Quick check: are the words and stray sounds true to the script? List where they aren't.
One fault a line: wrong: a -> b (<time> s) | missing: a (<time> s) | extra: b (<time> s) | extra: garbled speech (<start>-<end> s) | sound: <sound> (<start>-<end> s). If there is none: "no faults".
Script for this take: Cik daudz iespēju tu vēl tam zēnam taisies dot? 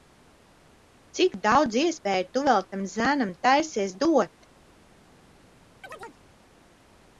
sound: chirp (5.8-6.2 s)